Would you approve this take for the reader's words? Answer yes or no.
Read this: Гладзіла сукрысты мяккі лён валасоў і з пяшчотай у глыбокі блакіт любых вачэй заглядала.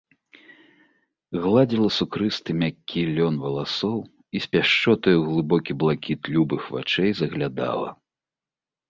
yes